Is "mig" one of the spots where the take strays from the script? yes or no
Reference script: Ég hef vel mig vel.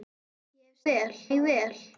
no